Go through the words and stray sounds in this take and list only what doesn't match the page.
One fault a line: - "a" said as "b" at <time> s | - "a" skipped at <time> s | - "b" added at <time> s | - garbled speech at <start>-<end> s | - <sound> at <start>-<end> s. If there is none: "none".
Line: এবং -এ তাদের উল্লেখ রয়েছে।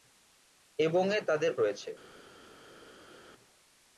- "উল্লেখ" skipped at 1.5 s